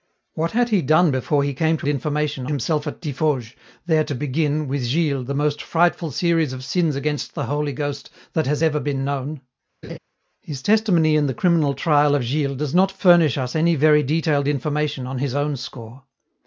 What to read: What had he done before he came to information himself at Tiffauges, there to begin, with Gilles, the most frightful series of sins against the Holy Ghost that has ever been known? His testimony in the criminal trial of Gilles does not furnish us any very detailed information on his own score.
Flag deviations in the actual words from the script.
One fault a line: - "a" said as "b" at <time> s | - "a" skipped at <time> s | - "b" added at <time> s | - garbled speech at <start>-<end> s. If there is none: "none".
none